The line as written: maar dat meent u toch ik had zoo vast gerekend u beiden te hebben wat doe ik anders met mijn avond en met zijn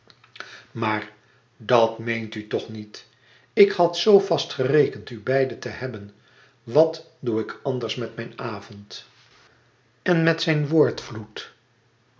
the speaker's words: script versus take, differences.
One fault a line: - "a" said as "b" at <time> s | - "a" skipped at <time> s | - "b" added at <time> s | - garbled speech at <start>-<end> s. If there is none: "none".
- "niet" added at 2.7 s